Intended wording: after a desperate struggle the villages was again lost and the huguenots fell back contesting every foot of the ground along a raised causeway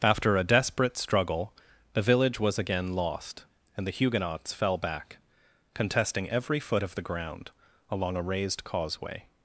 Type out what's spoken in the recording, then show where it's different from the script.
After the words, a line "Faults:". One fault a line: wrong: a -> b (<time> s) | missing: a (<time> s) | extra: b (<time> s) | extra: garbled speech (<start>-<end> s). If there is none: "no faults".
after a desperate struggle the village was again lost and the huguenots fell back contesting every foot of the ground along a raised causeway
Faults:
wrong: villages -> village (2.0 s)